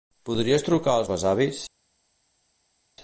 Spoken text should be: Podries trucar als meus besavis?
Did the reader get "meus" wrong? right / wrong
wrong